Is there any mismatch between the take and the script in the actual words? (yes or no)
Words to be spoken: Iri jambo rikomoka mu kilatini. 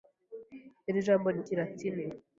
yes